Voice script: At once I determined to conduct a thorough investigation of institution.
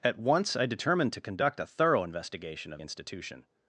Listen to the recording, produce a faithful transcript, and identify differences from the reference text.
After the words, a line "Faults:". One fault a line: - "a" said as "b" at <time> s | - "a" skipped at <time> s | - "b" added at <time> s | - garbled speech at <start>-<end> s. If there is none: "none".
At once I determined to conduct a thorough investigation of institution.
Faults:
none